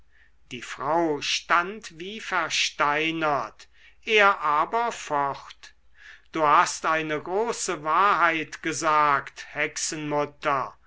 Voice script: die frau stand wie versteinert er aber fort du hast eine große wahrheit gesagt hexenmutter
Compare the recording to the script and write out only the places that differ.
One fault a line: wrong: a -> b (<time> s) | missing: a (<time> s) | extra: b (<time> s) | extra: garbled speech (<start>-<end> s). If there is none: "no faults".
no faults